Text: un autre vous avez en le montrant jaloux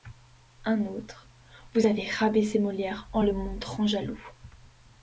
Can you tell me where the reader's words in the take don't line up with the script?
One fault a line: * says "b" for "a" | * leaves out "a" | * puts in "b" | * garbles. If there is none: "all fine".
* puts in "rabaissé molière"